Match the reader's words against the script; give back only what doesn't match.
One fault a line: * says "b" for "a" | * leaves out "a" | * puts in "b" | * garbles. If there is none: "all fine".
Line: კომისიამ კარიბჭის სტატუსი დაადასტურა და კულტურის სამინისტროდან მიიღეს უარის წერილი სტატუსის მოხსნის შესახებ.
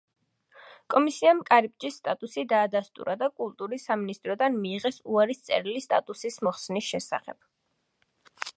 all fine